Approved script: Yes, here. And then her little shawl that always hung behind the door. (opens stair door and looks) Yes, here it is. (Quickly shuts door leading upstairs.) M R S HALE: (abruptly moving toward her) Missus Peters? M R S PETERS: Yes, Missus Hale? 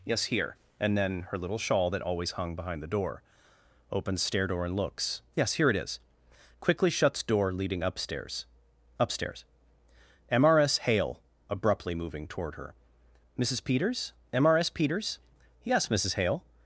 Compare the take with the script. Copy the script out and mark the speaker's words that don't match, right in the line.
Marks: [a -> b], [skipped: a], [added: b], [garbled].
Yes, here. And then her little shawl that always hung behind the door. (opens stair door and looks) Yes, here it is. (Quickly shuts door leading upstairs.) [added: upstairs] M R S HALE: (abruptly moving toward her) Missus Peters? M R S PETERS: Yes, Missus Hale?